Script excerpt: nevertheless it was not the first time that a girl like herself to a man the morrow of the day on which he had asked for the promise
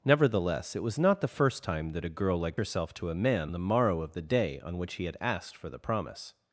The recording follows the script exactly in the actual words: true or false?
true